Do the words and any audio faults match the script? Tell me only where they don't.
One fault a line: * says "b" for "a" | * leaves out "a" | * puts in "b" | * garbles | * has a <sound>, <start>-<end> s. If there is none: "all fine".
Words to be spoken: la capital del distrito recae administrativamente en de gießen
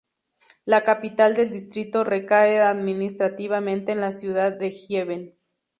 * puts in "la ciudad"